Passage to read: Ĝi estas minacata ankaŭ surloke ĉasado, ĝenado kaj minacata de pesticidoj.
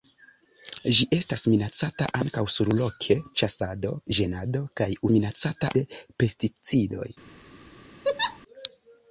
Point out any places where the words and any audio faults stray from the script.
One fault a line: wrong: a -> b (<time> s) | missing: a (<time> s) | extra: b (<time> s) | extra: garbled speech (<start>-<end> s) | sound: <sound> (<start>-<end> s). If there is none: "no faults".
sound: laugh (8.0-8.4 s)